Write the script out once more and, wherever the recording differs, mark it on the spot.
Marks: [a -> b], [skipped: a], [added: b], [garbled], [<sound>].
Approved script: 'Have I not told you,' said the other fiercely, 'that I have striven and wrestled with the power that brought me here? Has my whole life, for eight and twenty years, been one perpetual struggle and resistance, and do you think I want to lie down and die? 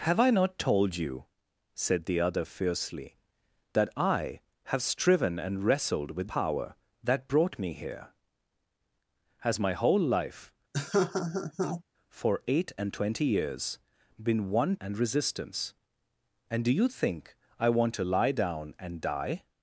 'Have I not told you,' said the other fiercely, 'that I have striven and wrestled with [skipped: the] power that brought me here? Has my whole life, [laugh] for eight and twenty years, been one [skipped: perpetual struggle] and resistance, and do you think I want to lie down and die?